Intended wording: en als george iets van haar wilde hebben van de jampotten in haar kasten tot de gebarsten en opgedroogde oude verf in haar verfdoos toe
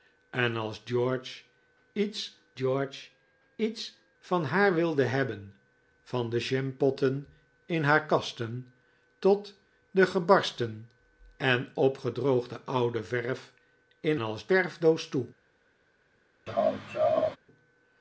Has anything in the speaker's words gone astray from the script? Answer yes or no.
yes